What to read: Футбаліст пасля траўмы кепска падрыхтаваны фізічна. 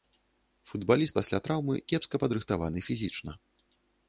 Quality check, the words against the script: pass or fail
pass